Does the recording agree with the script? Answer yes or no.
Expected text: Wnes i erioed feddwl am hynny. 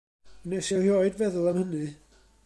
yes